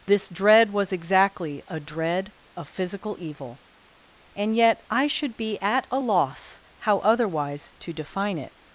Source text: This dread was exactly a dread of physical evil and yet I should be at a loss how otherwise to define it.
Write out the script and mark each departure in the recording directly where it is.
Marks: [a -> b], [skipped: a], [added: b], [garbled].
This dread was exactly a dread of physical evil and yet I should be at a loss how otherwise to define it.